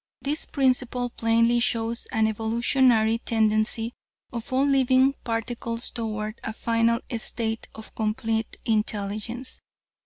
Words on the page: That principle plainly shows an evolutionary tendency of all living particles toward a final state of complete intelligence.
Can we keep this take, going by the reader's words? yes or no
no